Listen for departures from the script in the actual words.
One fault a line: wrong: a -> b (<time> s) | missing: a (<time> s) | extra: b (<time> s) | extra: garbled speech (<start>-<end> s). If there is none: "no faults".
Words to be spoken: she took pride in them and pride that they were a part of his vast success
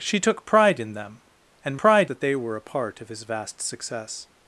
no faults